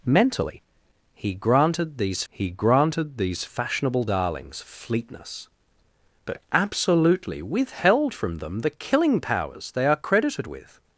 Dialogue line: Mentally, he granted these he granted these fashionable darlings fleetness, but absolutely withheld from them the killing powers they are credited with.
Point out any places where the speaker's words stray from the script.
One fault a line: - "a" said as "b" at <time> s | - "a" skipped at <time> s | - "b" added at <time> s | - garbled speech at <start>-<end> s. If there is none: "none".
none